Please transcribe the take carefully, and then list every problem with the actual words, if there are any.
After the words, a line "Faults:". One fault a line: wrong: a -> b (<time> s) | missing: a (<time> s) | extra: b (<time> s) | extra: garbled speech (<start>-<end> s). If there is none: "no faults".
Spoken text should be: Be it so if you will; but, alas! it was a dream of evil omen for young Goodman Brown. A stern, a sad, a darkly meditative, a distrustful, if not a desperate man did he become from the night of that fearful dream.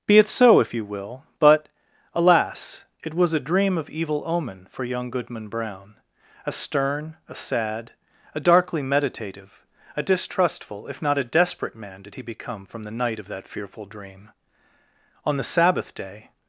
Be it so if you will; but, alas! it was a dream of evil omen for young Goodman Brown. A stern, a sad, a darkly meditative, a distrustful, if not a desperate man did he become from the night of that fearful dream. On the Sabbath day
Faults:
extra: On the Sabbath day (15.3 s)